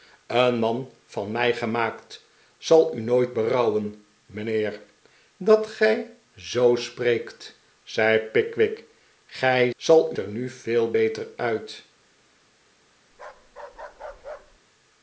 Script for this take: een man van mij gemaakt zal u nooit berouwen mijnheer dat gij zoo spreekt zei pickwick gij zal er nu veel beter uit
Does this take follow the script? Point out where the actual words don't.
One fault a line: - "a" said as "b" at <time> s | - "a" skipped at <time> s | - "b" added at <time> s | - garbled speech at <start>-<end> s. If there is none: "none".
none